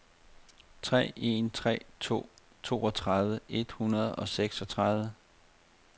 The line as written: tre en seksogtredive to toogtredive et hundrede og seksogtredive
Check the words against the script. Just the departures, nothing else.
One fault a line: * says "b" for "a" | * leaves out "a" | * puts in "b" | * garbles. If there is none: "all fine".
* says "tre" for "seksogtredive"